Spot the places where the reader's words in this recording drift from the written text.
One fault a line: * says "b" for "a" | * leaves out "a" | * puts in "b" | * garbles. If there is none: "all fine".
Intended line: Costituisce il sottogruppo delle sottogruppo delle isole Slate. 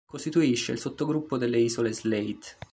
* leaves out "sottogruppo delle"